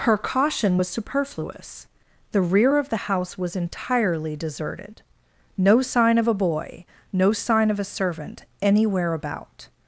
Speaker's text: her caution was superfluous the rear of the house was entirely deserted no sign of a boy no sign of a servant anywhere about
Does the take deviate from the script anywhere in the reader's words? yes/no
no